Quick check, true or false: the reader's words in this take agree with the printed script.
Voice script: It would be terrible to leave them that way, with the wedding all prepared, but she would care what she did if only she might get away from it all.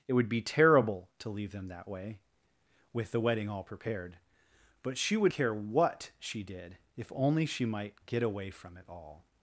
true